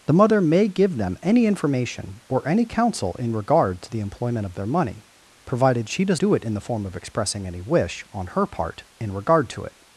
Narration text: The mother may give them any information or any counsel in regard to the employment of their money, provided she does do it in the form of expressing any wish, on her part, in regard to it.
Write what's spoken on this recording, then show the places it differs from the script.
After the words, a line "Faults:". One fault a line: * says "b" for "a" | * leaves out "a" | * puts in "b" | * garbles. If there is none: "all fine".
The mother may give them any information or any counsel in regard to the employment of their money, provided she does do it in the form of expressing any wish, on her part, in regard to it.
Faults:
all fine